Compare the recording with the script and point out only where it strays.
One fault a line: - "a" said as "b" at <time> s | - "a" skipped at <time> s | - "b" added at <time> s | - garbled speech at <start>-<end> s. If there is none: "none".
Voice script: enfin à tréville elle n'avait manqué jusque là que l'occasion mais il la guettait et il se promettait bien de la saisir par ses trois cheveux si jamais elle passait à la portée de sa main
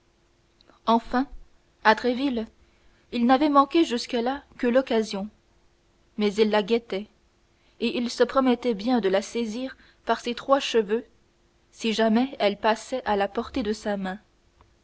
- "elle" said as "il" at 3.1 s